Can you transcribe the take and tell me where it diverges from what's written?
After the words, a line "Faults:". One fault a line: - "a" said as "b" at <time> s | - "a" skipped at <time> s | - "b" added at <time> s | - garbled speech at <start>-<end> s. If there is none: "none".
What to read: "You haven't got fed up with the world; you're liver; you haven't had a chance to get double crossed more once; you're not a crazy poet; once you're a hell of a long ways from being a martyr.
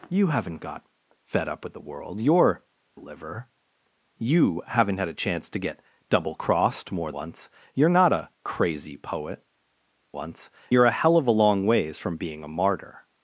"You haven't got fed up with the world; you're liver; you haven't had a chance to get double crossed more once; you're not a crazy poet; once you're a hell of a long ways from being a martyr.
Faults:
none